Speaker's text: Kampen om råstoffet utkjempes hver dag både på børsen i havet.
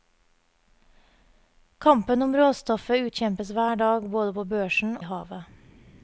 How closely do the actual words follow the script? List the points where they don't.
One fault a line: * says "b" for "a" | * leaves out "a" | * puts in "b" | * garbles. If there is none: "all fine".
all fine